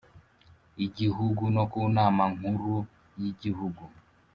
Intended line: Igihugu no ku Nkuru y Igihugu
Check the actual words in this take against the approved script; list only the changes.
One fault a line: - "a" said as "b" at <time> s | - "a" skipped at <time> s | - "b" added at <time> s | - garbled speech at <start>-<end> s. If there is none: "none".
- "Nama" added at 1.9 s